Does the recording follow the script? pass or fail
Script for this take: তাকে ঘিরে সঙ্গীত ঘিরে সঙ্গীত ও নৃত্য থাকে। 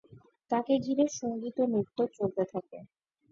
fail